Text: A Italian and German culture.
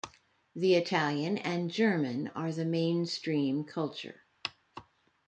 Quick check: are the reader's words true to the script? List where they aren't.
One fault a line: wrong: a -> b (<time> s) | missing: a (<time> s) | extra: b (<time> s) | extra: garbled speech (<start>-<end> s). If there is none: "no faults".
wrong: A -> The (0.6 s)
extra: are the mainstream (2.3 s)